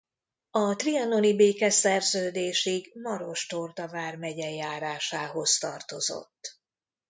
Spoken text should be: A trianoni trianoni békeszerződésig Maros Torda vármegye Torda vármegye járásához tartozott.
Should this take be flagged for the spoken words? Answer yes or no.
yes